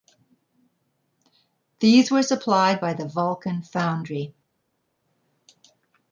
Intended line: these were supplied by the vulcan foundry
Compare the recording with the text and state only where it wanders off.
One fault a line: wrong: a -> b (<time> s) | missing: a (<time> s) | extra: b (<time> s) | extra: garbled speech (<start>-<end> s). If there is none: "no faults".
no faults